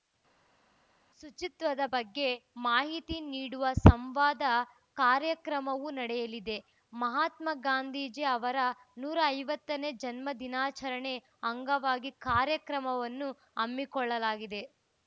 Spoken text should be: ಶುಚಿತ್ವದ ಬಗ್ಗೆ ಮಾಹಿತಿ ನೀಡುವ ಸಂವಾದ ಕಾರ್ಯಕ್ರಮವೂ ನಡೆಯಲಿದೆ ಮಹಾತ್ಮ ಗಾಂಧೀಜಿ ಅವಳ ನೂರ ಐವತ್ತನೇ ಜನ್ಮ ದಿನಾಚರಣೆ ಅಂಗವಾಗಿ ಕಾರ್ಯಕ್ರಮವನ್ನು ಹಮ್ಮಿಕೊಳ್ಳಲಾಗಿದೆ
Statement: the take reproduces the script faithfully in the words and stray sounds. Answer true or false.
false